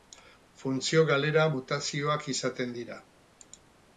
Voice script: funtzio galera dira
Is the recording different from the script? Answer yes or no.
yes